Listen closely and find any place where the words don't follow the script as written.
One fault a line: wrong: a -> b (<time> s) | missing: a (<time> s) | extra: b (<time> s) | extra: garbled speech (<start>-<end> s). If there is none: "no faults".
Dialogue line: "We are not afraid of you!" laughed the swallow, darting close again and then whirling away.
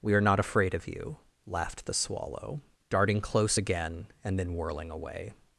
no faults